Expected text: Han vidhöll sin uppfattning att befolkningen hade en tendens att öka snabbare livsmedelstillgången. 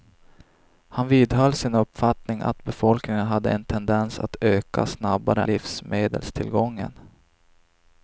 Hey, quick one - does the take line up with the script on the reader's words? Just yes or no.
yes